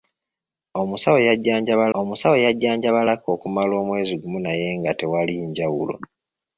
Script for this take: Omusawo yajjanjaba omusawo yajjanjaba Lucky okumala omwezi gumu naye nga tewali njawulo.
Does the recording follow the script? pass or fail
pass